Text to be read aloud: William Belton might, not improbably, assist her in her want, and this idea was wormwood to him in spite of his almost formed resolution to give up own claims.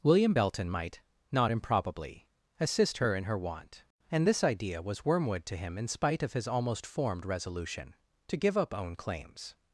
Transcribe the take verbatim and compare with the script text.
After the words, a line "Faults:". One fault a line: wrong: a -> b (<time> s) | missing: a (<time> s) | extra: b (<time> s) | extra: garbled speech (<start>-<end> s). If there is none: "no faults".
William Belton might, not improbably, assist her in her want, and this idea was wormwood to him in spite of his almost formed resolution to give up own claims.
Faults:
no faults